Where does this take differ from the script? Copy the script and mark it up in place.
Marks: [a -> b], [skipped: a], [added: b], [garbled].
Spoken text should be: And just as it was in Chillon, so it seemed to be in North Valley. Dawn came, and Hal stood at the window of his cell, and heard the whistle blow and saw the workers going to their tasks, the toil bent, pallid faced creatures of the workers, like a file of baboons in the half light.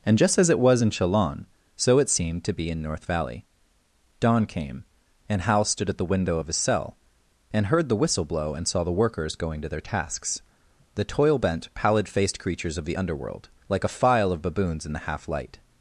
And just as it was in Chillon, so it seemed to be in North Valley. Dawn came, and Hal stood at the window of his cell, and heard the whistle blow and saw the workers going to their tasks, the toil bent, pallid faced creatures of the [workers, -> underworld] like a file of baboons in the half light.